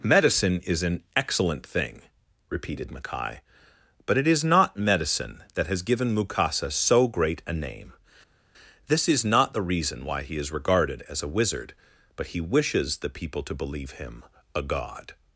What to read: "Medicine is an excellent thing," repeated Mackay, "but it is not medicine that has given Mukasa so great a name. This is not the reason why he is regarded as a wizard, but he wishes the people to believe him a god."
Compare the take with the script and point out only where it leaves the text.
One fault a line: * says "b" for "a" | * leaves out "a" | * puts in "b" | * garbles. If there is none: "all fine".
all fine